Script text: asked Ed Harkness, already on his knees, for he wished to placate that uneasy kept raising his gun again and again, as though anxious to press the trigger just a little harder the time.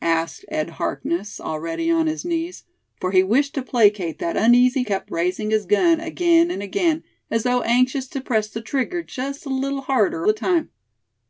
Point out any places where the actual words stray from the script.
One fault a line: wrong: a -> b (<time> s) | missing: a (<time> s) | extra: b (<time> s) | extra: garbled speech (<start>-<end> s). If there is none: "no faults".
no faults